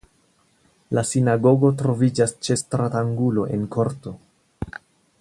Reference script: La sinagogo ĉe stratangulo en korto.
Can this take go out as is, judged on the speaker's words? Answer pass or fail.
fail